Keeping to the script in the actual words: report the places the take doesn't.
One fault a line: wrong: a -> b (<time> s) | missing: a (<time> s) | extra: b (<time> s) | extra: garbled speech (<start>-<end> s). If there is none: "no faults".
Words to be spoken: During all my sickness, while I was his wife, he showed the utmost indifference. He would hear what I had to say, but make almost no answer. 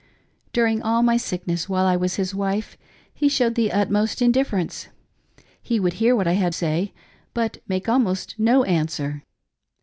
missing: to (6.5 s)